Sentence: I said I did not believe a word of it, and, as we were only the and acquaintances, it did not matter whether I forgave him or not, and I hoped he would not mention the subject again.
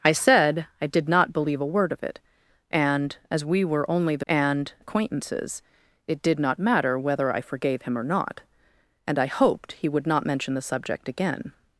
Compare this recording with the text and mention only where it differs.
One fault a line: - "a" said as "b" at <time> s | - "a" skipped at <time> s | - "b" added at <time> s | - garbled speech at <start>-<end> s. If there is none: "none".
none